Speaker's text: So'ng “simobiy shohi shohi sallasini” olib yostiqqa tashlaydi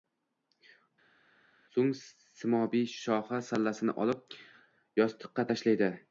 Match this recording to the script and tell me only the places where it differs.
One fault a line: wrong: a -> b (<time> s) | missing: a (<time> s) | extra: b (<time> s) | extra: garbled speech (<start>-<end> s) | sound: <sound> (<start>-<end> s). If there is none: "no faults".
missing: shohi (3.4 s)